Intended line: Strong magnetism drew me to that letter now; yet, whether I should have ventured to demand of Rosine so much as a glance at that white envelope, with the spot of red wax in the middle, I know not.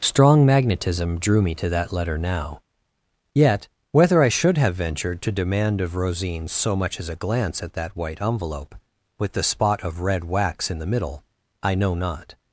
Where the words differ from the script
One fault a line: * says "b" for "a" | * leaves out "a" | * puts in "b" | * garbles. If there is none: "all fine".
all fine